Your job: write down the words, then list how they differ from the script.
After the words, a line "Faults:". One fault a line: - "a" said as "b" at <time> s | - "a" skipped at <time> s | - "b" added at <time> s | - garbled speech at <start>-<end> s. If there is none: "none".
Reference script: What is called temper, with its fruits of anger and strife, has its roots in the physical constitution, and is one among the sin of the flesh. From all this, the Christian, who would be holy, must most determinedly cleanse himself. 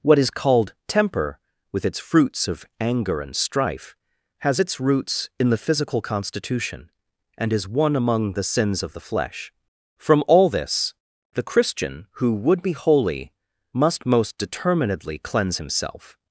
What is called temper, with its fruits of anger and strife, has its roots in the physical constitution, and is one among the sins of the flesh. From all this, the Christian, who would be holy, must most determinedly cleanse himself.
Faults:
- "sin" said as "sins" at 8.5 s